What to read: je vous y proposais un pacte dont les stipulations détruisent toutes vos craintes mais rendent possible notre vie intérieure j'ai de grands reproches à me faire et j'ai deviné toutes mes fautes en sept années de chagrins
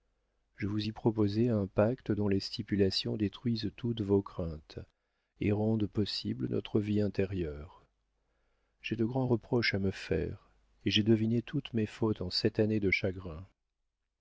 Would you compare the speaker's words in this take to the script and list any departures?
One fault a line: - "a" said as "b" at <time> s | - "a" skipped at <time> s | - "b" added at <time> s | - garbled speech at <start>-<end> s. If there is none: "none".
- "mais" said as "et" at 5.4 s